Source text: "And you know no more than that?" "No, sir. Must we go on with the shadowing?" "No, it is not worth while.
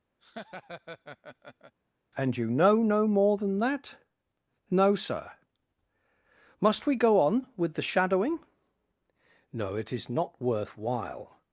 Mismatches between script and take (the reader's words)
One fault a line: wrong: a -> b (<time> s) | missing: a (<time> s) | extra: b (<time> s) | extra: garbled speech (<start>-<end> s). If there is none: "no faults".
no faults